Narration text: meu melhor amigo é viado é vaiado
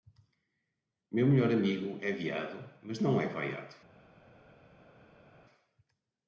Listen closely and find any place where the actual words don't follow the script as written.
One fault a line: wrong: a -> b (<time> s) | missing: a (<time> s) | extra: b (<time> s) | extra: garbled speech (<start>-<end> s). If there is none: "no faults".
extra: mas não (2.8 s)